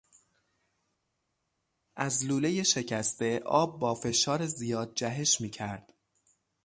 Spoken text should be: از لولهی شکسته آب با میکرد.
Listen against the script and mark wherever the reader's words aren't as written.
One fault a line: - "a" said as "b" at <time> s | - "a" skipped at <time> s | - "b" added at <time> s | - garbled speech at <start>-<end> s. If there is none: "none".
- "فشار زیاد جهش" added at 3.9 s